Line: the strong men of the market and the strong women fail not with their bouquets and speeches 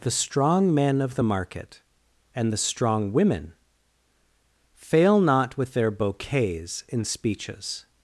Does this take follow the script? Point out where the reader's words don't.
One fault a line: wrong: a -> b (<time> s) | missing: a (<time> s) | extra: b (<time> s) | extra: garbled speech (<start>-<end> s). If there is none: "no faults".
wrong: and -> in (6.9 s)